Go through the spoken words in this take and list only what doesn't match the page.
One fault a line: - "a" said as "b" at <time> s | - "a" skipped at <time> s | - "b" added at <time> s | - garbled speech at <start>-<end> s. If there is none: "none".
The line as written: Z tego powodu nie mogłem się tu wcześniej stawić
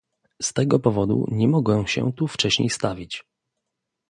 none